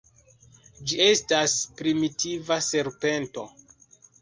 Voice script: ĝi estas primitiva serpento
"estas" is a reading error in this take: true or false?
false